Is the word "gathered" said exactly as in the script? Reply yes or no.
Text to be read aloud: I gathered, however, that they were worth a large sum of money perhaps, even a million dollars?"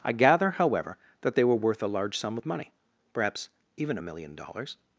no